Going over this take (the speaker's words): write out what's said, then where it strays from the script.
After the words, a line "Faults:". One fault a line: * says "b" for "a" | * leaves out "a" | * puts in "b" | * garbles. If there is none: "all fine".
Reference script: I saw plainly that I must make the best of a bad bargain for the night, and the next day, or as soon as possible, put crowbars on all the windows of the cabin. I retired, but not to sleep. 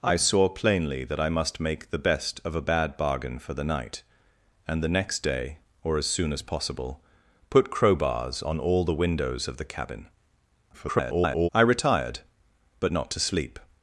I saw plainly that I must make the best of a bad bargain for the night, and the next day, or as soon as possible, put crowbars on all the windows of the cabin. [garbled] I retired, but not to sleep.
Faults:
* garbles